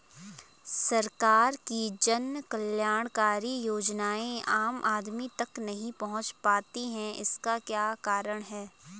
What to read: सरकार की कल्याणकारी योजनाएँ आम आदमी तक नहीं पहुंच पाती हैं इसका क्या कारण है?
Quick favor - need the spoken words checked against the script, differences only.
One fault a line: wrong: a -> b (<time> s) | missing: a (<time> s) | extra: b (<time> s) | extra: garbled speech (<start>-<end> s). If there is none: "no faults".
extra: जन (2.0 s)